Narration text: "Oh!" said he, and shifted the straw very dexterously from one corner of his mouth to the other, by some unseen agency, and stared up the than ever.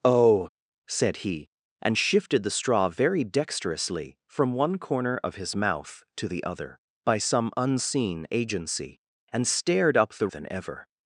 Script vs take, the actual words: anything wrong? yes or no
no